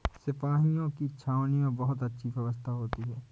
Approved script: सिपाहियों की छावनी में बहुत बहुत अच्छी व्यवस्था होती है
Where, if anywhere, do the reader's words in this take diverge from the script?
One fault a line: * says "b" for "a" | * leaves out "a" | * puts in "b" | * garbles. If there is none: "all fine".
* leaves out "बहुत"